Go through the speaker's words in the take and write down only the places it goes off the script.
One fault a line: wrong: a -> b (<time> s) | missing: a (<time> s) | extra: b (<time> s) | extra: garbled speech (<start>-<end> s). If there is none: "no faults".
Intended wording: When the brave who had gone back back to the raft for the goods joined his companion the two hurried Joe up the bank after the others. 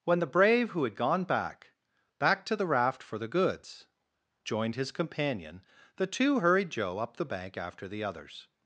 no faults